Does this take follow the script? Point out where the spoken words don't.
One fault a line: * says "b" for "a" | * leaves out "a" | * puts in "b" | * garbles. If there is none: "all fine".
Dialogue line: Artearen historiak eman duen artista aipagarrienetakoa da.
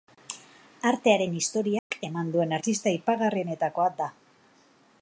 all fine